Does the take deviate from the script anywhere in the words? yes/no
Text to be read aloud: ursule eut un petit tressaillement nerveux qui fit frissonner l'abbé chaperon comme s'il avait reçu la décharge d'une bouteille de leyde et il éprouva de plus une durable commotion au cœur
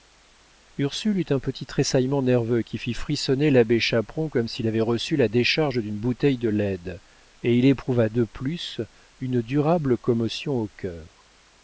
no